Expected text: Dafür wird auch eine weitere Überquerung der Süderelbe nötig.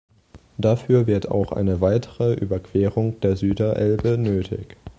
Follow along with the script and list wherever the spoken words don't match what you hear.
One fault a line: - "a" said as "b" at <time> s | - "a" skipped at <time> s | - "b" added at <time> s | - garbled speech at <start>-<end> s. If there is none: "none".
none